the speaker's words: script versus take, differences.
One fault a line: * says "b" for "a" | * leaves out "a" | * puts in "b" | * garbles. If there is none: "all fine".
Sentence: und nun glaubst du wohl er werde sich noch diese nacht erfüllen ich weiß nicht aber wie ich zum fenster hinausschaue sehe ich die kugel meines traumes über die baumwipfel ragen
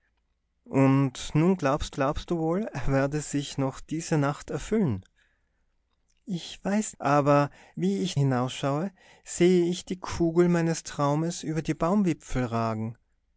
* puts in "glaubst"
* leaves out "nicht"
* leaves out "zum fenster"